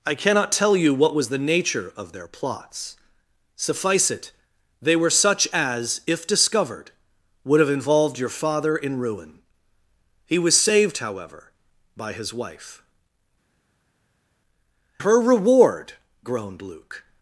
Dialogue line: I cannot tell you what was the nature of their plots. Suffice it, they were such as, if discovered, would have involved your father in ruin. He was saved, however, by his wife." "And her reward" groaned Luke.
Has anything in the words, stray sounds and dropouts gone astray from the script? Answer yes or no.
yes